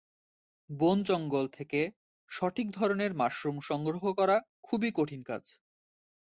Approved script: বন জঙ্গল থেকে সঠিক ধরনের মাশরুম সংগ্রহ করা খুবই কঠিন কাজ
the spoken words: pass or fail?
pass